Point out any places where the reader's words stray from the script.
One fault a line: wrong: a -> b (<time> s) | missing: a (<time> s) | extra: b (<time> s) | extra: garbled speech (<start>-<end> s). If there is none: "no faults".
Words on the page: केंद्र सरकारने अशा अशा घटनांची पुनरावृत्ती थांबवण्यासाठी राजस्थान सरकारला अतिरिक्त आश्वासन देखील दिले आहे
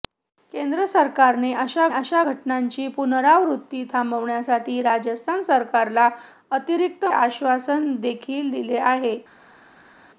no faults